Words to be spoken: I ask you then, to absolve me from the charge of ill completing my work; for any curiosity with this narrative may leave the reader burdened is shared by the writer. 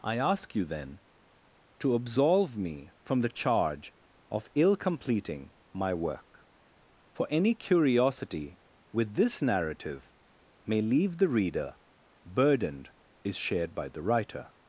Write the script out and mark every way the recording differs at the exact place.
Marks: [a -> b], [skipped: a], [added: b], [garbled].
I ask you then, to absolve me from the charge of ill completing my work; for any curiosity with this narrative may leave the reader burdened is shared by the writer.